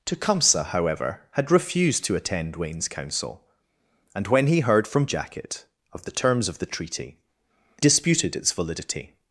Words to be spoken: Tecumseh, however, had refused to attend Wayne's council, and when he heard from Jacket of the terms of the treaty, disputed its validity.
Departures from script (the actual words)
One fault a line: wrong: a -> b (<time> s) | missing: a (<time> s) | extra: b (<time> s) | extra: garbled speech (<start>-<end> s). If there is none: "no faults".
no faults